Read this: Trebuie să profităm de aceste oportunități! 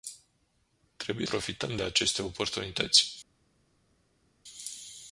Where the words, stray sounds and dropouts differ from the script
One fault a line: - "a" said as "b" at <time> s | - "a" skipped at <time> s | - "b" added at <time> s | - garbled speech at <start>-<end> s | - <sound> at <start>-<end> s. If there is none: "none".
- "să" skipped at 1.3 s